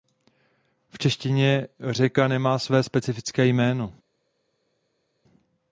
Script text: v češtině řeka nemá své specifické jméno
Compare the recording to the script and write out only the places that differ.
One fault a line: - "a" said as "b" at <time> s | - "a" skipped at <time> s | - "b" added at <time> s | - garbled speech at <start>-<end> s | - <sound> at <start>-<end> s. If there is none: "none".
none